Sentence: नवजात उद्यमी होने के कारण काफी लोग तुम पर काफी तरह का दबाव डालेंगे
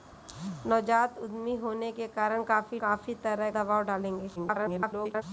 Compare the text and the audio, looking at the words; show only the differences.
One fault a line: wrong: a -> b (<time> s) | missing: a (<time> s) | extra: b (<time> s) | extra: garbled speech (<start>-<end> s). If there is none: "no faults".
missing: लोग तुम पर (2.8 s)
missing: का (3.5 s)
extra: garbled speech (4.4-5.2 s)